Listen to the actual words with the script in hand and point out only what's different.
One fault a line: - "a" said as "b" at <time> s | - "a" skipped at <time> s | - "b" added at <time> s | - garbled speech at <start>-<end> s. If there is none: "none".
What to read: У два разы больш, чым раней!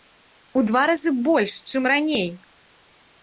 none